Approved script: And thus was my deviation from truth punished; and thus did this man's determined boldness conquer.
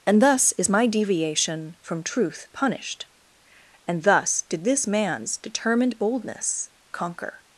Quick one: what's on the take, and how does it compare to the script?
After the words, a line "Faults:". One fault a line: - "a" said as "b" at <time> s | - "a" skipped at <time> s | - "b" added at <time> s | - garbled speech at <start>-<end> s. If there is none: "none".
And thus is my deviation from truth punished; and thus did this man's determined boldness conquer.
Faults:
- "was" said as "is" at 0.5 s